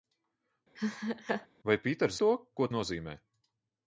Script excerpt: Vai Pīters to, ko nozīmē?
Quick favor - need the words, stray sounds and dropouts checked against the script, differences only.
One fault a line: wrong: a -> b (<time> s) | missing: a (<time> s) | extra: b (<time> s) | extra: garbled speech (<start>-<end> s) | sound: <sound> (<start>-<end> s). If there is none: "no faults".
sound: laugh (0.8-1.5 s)